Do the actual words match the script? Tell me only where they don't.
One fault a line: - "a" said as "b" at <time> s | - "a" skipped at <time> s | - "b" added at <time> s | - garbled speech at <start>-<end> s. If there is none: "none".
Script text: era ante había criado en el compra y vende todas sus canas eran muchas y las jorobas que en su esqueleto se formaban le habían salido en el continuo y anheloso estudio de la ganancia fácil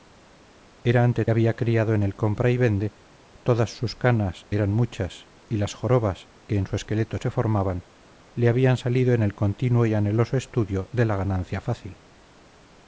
none